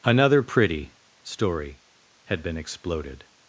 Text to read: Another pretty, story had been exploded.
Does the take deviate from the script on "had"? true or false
false